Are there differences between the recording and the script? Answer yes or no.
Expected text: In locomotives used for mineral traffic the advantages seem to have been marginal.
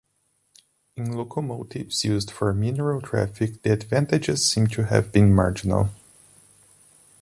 no